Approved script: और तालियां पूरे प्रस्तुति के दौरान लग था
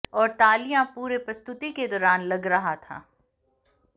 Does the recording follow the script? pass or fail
fail